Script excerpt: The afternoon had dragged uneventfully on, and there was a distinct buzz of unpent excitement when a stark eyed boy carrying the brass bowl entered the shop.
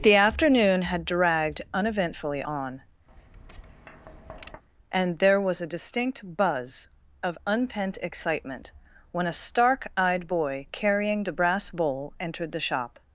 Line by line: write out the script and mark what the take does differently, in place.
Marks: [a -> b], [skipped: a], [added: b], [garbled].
The afternoon had dragged uneventfully on, and there was a distinct buzz of unpent excitement when a stark eyed boy carrying the brass bowl entered the shop.